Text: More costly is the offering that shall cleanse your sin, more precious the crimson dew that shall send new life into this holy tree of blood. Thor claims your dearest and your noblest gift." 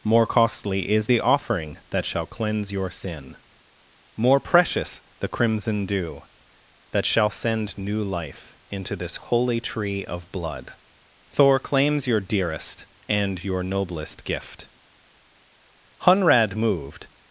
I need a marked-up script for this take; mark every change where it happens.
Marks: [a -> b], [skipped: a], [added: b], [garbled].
More costly is the offering that shall cleanse your sin, more precious the crimson dew that shall send new life into this holy tree of blood. Thor claims your dearest and your noblest gift." [added: Hunrad moved]